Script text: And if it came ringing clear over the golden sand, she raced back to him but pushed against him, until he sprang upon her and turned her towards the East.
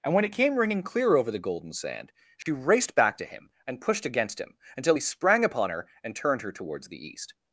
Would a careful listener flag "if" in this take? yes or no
yes